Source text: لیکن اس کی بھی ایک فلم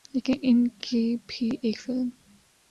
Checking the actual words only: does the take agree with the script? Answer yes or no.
no